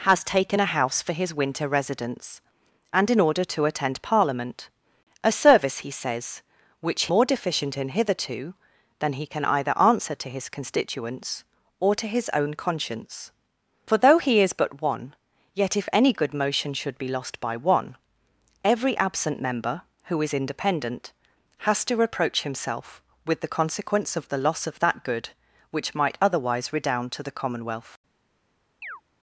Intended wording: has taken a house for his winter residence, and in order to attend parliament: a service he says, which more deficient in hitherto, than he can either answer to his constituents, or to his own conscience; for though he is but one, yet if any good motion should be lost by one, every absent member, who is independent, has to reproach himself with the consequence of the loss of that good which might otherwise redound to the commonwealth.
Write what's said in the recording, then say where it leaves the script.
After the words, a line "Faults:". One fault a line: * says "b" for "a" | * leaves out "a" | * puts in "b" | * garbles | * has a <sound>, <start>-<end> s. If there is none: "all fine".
has taken a house for his winter residence, and in order to attend parliament: a service he says, which more deficient in hitherto, than he can either answer to his constituents, or to his own conscience; for though he is but one, yet if any good motion should be lost by one, every absent member, who is independent, has to reproach himself with the consequence of the loss of that good which might otherwise redound to the commonwealth.
Faults:
* has a chirp, 28.8-29.0 s